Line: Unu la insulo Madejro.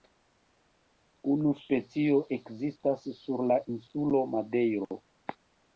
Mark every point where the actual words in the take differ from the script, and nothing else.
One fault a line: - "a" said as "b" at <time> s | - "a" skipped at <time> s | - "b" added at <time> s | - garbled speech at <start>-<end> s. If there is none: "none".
- "specio ekzistas sur" added at 1.6 s